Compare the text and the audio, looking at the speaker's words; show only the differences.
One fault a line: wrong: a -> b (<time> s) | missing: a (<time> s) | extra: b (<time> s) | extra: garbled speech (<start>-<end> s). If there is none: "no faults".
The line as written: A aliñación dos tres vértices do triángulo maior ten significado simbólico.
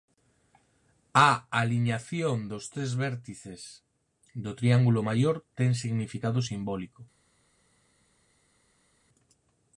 no faults